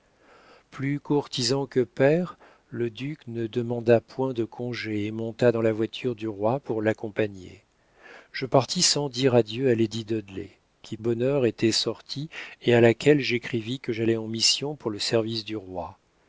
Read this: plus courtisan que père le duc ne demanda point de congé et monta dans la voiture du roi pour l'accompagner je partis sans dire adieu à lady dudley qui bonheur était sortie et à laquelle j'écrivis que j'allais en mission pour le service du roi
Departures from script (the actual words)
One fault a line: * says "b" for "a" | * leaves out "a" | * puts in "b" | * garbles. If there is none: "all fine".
all fine